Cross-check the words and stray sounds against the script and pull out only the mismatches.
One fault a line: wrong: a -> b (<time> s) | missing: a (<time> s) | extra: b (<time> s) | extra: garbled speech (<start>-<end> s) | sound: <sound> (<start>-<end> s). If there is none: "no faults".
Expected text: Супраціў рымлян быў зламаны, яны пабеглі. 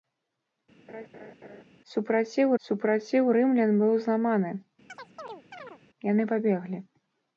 sound: laugh (0.9-1.6 s)
extra: супраціў (2.6 s)
sound: chirp (4.9-5.8 s)